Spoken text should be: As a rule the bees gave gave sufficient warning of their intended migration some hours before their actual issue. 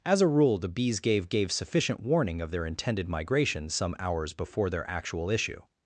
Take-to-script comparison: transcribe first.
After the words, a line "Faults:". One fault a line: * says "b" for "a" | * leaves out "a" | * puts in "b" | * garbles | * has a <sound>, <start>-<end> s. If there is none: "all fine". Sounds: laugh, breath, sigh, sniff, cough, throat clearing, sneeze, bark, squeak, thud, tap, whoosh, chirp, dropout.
As a rule the bees gave gave sufficient warning of their intended migration some hours before their actual issue.
Faults:
all fine